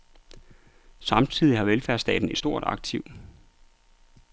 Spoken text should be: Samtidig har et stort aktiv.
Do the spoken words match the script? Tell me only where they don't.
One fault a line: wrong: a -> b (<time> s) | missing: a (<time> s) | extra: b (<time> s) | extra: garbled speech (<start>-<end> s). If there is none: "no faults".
extra: velfærdsstaten (1.6 s)